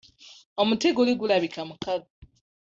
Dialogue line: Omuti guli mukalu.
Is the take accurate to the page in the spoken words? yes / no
no